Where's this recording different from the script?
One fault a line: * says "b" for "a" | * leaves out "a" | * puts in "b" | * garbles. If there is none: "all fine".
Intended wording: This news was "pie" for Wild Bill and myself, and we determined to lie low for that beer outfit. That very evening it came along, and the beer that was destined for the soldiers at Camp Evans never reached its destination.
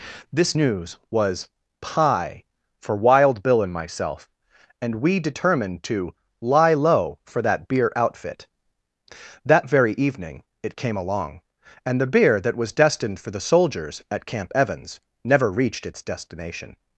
all fine